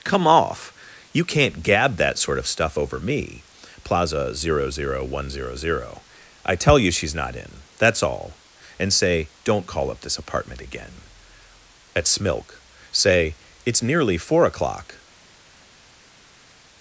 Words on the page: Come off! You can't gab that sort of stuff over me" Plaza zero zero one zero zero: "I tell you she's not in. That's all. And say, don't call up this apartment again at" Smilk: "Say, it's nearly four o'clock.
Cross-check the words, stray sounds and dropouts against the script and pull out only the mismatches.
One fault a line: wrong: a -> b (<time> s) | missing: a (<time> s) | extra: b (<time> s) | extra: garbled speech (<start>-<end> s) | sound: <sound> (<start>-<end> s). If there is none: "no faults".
no faults